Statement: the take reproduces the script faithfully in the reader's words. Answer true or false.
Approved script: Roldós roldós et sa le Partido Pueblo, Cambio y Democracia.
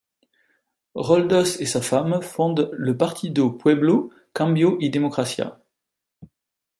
false